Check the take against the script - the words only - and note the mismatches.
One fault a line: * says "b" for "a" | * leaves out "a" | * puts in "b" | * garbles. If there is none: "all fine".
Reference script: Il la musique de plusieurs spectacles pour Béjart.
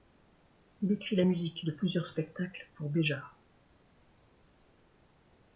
* puts in "écrit"